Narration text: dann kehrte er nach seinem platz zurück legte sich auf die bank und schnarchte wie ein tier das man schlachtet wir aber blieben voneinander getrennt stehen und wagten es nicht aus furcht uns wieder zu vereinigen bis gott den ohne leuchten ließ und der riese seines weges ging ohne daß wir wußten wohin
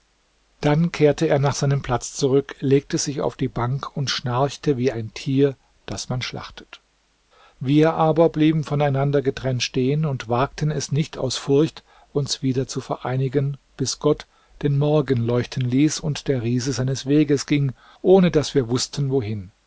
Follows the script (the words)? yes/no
no